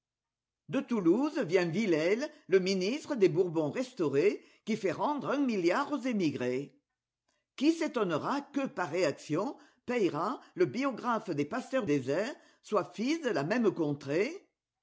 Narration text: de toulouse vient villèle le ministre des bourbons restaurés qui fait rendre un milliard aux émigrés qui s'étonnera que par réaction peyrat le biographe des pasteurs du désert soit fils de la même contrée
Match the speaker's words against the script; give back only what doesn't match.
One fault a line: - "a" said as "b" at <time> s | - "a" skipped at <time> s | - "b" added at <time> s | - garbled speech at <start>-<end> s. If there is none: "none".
- "du" skipped at 11.8 s